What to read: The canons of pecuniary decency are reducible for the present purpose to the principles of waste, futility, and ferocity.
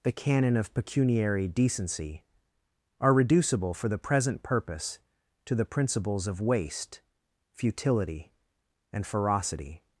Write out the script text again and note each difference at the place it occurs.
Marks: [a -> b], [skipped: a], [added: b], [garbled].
The [canons -> canon] of pecuniary decency are reducible for the present purpose to the principles of waste, futility, and ferocity.